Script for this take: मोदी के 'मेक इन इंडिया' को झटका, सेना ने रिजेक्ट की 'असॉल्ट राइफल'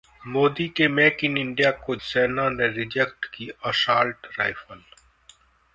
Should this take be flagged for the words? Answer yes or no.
yes